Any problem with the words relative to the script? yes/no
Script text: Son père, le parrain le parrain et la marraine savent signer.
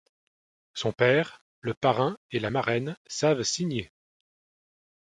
yes